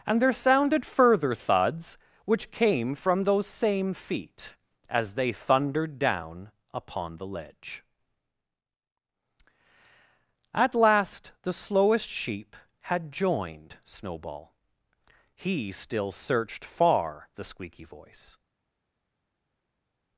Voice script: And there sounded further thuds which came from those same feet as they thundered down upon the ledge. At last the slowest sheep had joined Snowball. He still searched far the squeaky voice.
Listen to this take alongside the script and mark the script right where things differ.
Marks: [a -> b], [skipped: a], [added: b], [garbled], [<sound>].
And there sounded further thuds which came from those same feet as they thundered down upon the ledge. At last the slowest sheep had joined Snowball. He still searched far the squeaky voice.